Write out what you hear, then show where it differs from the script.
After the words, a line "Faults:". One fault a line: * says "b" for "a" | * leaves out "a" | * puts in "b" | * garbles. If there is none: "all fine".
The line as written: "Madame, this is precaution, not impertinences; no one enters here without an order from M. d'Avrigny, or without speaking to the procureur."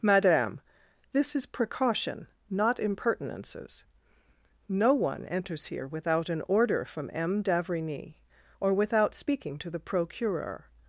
"Madame, this is precaution, not impertinences; no one enters here without an order from M. d'Avrigny, or without speaking to the procureur."
Faults:
all fine